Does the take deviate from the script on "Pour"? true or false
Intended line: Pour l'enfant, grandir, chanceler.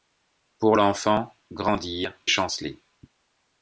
false